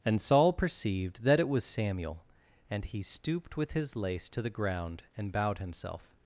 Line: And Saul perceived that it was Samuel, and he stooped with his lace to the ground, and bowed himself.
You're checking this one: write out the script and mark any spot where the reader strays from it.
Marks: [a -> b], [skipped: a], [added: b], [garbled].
And Saul perceived that it was Samuel, and he stooped with his lace to the ground, and bowed himself.